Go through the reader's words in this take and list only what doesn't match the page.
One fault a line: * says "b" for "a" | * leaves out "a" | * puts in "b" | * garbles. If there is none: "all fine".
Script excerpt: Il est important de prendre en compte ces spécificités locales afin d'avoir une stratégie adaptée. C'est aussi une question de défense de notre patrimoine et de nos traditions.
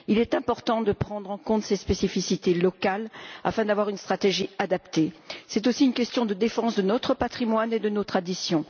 all fine